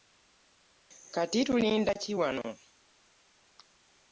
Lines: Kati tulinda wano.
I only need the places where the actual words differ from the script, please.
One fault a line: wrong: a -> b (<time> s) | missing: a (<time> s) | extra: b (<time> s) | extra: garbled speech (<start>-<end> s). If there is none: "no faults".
extra: ki (2.0 s)